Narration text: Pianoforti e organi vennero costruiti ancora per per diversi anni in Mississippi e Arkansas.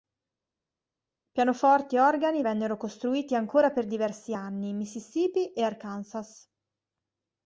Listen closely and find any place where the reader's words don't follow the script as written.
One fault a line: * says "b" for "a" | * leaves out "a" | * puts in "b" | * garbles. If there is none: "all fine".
* leaves out "per"